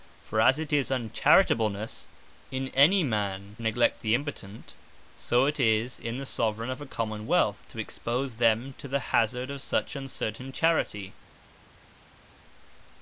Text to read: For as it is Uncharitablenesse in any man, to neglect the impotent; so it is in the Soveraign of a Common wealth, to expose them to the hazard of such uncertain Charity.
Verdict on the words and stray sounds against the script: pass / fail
fail